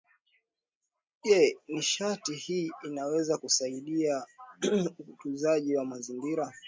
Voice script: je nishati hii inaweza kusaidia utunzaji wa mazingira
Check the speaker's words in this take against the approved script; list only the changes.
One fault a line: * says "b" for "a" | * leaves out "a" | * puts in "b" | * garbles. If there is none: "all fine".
all fine